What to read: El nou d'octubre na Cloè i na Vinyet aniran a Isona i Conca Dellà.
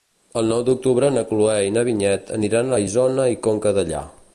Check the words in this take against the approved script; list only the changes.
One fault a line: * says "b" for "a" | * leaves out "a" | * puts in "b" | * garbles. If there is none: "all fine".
all fine